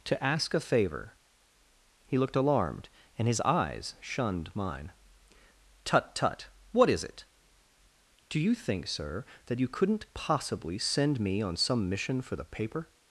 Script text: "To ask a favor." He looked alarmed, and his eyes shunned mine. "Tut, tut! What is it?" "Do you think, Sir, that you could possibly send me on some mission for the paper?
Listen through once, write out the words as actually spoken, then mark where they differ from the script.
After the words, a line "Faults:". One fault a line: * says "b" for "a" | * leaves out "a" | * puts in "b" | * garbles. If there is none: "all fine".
"To ask a favor." He looked alarmed, and his eyes shunned mine. "Tut, tut! What is it?" "Do you think, Sir, that you couldn't possibly send me on some mission for the paper?
Faults:
* says "couldn't" for "could"